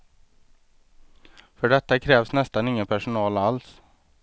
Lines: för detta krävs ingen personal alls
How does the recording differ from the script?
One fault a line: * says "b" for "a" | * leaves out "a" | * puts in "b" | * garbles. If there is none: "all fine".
* puts in "nästan"